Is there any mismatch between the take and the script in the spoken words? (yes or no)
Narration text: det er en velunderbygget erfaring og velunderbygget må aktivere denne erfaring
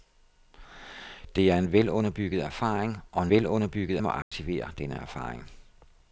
no